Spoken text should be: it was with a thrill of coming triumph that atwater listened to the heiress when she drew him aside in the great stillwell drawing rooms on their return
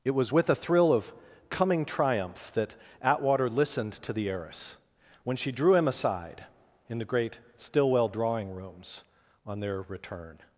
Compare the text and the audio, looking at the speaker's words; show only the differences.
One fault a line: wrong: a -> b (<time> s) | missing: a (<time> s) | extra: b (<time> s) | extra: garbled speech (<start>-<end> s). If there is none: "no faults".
no faults